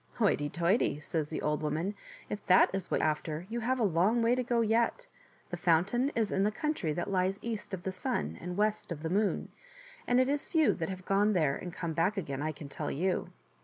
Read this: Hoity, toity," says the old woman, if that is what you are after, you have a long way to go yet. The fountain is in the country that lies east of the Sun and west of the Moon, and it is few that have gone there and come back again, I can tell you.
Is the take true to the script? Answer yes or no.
no